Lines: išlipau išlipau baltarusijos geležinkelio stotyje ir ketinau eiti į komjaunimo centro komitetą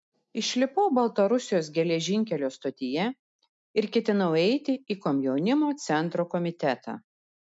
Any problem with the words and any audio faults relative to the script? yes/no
yes